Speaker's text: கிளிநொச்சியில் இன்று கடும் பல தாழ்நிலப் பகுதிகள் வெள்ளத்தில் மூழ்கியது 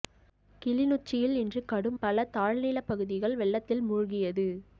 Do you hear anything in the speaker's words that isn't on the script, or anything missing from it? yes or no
no